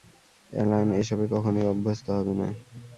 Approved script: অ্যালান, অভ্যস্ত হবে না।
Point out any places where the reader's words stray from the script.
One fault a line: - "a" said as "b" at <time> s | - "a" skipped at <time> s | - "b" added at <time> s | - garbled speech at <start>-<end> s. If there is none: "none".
- "এসবে কখনোই" added at 1.0 s